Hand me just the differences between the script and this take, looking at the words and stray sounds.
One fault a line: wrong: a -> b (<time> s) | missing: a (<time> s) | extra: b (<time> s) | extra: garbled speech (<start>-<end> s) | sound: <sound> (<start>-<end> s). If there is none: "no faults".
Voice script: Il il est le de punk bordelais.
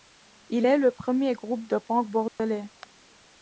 missing: il (0.7 s)
extra: premier groupe (0.9 s)
sound: dropout (2.3-2.4 s)